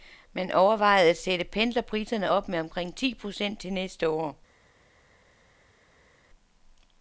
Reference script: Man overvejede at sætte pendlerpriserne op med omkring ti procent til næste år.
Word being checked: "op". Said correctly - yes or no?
yes